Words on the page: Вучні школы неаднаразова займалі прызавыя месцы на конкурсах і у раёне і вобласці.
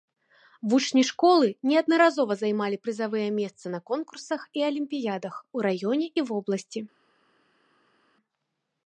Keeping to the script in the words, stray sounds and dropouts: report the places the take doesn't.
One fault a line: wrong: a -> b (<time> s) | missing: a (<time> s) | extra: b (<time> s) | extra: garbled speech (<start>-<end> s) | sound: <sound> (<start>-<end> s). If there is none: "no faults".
extra: алімпіядах (4.7 s)